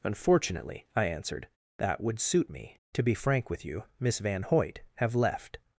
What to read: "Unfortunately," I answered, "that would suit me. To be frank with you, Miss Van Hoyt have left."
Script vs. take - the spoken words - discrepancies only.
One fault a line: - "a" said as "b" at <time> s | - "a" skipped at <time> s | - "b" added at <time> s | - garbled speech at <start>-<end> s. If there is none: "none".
none